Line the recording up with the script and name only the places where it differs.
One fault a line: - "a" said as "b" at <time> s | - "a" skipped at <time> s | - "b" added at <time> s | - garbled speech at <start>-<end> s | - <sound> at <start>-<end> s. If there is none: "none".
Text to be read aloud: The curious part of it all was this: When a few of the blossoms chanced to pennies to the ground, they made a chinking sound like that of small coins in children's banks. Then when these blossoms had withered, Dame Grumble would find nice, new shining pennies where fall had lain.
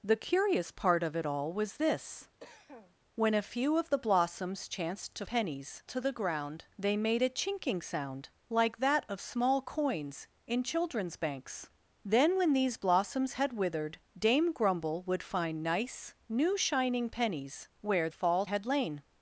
- cough at 2.4-3.0 s